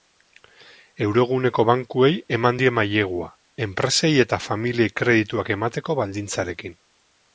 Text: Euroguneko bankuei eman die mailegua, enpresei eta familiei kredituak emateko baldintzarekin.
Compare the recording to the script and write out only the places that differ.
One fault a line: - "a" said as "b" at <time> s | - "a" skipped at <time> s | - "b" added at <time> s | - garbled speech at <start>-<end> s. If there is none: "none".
none